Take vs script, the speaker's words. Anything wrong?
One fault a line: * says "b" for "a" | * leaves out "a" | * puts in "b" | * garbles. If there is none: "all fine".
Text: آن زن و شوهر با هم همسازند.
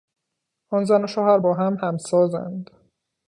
all fine